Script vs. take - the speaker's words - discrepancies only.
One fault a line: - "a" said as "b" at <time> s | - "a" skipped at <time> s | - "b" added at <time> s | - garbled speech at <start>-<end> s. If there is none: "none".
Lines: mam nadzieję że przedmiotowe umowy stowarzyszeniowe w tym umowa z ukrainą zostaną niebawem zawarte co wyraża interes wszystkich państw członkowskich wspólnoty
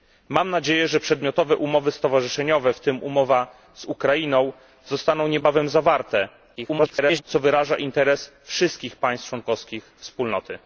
- garbled speech at 6.6-7.2 s